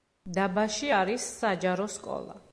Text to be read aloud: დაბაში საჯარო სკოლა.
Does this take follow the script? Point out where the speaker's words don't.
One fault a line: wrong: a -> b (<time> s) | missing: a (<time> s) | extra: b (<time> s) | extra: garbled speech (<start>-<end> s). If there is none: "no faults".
extra: არის (1.0 s)